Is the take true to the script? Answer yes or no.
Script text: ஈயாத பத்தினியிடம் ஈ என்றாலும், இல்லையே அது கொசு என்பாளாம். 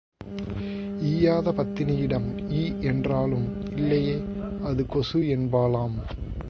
yes